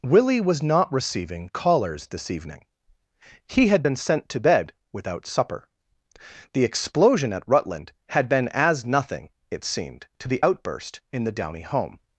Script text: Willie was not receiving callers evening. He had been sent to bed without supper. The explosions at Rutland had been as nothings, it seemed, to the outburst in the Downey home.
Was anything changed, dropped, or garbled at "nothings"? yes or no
yes